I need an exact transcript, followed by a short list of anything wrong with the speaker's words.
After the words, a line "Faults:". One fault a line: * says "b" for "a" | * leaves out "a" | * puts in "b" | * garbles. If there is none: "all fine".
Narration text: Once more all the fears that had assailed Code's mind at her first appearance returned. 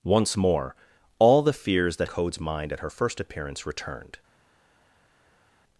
Once more all the fears that Code's mind at her first appearance returned.
Faults:
* leaves out "had assailed"